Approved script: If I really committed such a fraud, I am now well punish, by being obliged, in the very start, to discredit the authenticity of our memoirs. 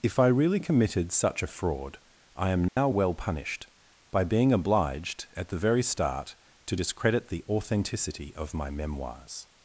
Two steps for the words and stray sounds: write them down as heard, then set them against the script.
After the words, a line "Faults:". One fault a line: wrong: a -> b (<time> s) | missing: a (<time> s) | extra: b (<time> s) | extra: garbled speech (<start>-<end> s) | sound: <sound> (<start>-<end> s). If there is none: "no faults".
If I really committed such a fraud, I am now well punished, by being obliged, at the very start, to discredit the authenticity of my memoirs.
Faults:
sound: dropout (2.7-2.8 s)
wrong: punish -> punished (3.1 s)
wrong: in -> at (5.3 s)
wrong: our -> my (8.5 s)